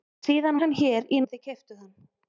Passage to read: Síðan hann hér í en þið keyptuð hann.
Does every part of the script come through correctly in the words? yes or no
yes